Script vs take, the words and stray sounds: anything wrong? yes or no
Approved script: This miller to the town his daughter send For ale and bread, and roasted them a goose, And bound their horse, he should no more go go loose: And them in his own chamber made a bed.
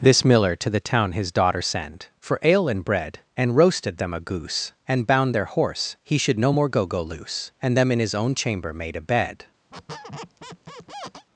yes